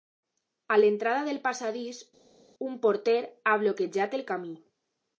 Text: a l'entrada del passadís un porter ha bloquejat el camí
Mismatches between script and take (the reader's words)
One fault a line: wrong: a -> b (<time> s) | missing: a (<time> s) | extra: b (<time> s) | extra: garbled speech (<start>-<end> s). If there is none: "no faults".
no faults